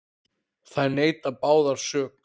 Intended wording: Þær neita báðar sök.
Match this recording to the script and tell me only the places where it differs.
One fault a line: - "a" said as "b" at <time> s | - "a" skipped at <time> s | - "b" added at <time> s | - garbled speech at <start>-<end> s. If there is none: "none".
none